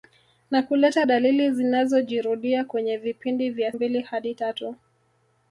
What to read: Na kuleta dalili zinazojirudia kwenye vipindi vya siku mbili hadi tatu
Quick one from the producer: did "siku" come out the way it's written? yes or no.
no